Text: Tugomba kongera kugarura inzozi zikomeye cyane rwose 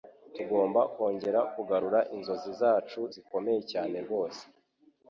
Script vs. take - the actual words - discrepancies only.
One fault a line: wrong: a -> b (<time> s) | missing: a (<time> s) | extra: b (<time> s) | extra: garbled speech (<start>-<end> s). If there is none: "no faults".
extra: zacu (2.6 s)